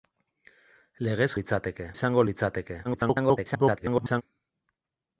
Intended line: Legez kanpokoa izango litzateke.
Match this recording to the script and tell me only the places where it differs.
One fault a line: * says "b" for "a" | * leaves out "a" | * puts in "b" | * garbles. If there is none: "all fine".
* says "litzateke" for "kanpokoa"
* garbles